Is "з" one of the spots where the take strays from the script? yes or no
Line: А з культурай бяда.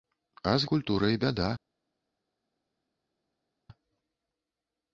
no